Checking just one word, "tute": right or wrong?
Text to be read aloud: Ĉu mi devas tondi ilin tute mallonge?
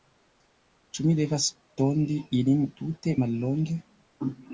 right